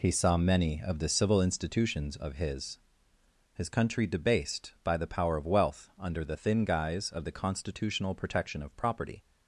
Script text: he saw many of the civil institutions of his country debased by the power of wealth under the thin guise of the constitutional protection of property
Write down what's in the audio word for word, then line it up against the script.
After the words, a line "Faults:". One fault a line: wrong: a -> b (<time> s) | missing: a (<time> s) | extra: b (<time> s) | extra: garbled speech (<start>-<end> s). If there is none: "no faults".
he saw many of the civil institutions of his his country debased by the power of wealth under the thin guise of the constitutional protection of property
Faults:
extra: his (3.5 s)